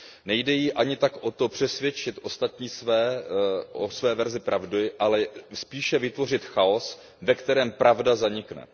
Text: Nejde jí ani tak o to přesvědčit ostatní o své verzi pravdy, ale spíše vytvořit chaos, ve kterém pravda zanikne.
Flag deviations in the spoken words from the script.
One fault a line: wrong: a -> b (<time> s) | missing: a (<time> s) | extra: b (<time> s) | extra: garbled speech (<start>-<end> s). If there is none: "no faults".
no faults